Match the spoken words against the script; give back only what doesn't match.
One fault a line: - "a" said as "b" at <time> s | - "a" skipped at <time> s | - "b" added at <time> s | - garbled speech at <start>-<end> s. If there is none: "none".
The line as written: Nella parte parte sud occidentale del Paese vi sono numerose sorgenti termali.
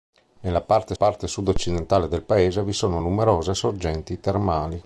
none